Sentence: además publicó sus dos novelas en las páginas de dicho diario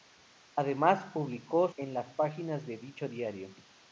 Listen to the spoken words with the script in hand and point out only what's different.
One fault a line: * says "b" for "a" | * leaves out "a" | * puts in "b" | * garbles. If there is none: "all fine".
* leaves out "sus dos novelas"